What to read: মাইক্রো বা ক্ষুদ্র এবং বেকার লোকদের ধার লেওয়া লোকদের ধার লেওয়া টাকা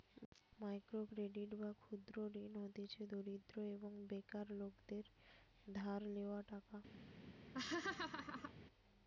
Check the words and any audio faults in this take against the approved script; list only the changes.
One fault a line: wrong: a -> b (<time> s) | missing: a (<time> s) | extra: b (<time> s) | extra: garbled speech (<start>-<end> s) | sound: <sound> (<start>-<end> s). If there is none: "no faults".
extra: ক্রেডিট (1.1 s)
wrong: এবং বেকার লোকদের ধার লেওয়া -> ঋণ হতিছে দরিদ্র এবং বেকার (2.4 s)
sound: laugh (7.5-8.5 s)